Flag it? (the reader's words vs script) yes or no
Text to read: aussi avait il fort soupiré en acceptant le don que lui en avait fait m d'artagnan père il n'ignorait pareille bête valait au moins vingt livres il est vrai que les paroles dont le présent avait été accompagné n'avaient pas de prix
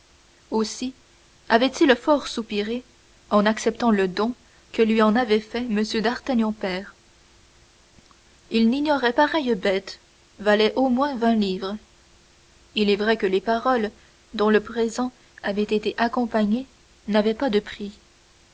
no